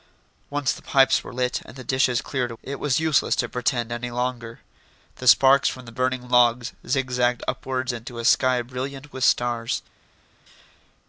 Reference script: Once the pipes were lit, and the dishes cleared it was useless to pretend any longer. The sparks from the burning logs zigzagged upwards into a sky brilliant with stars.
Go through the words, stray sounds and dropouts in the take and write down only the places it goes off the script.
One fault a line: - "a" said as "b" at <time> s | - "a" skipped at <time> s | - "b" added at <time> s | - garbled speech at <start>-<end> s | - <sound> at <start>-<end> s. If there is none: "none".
none